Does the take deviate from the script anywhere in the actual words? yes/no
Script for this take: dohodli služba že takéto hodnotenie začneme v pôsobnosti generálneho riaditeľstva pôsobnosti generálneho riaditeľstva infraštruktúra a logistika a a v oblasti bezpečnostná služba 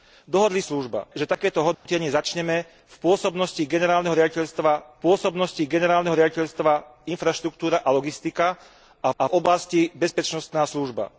no